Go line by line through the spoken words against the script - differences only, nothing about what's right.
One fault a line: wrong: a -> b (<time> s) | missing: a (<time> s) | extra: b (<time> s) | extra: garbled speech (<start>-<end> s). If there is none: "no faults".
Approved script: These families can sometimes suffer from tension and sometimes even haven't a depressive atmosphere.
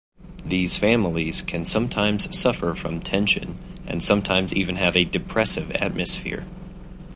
wrong: haven't -> have (4.8 s)